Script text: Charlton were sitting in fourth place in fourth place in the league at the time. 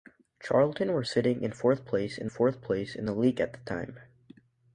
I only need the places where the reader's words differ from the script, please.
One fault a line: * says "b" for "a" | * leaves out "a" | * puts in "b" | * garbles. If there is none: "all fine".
all fine